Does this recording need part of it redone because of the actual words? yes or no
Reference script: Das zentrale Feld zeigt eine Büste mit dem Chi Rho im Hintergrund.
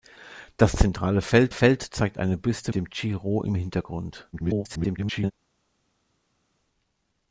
yes